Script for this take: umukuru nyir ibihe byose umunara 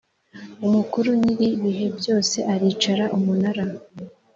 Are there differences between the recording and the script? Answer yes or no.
yes